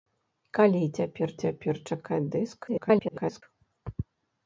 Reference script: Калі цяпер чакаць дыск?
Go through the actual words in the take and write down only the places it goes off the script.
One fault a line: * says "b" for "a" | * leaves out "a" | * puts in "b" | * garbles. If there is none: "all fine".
* puts in "цяпер"
* garbles